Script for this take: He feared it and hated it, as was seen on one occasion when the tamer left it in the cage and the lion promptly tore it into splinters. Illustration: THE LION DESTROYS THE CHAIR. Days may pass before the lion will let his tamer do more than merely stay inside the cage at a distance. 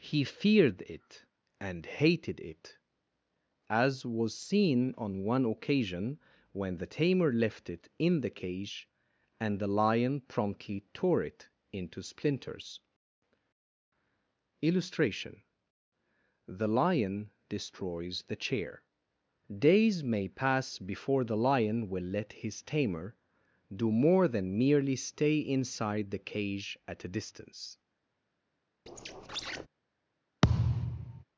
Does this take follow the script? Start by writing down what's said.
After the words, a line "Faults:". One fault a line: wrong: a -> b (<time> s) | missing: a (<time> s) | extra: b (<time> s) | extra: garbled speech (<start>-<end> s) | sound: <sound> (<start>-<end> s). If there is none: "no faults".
He feared it and hated it, as was seen on one occasion when the tamer left it in the cage and the lion promptly tore it into splinters. Illustration: THE LION DESTROYS THE CHAIR. Days may pass before the lion will let his tamer do more than merely stay inside the cage at a distance.
Faults:
sound: squeak (28.9-29.7 s)
sound: thud (30.4-31.2 s)